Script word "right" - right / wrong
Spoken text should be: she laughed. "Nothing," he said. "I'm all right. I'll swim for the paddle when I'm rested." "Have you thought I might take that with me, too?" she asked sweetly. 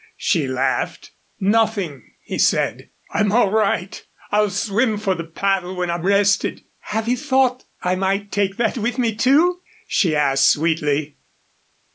right